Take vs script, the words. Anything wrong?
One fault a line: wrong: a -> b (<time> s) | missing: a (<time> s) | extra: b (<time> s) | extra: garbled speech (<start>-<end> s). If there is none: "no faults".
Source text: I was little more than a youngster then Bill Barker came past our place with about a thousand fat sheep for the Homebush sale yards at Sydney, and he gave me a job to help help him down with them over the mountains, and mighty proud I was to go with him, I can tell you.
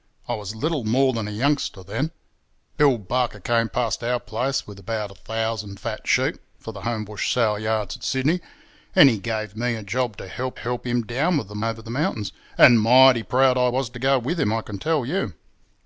no faults